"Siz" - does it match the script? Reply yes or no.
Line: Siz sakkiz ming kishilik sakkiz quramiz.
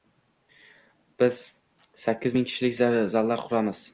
no